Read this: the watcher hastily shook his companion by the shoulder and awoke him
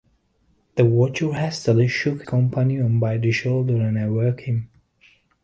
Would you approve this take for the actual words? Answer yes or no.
no